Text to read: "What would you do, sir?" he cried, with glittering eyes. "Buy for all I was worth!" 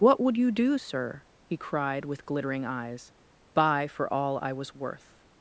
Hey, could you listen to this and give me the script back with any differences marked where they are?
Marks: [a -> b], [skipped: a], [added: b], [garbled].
"What would you do, sir?" he cried, with glittering eyes. "Buy for all I was worth!"